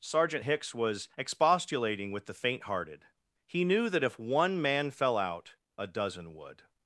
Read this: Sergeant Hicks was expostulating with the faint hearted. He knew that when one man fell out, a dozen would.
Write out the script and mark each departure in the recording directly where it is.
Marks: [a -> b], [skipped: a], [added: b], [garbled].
Sergeant Hicks was expostulating with the faint hearted. He knew that [when -> if] one man fell out, a dozen would.